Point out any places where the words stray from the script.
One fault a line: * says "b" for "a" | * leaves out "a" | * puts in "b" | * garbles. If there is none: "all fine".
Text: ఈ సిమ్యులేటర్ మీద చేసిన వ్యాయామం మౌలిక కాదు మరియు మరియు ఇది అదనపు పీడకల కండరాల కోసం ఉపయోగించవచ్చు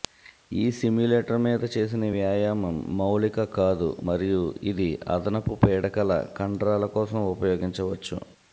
* leaves out "మరియు"